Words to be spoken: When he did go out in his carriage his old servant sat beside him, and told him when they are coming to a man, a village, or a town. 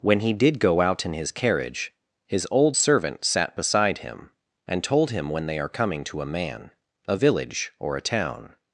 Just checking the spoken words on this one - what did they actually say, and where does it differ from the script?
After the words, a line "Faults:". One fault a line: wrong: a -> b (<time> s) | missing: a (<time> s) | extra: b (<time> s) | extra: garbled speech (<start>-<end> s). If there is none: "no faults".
When he did go out in his carriage his old servant sat beside him, and told him when they are coming to a man, a village, or a town.
Faults:
no faults